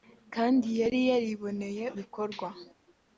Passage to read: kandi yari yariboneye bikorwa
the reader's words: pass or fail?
pass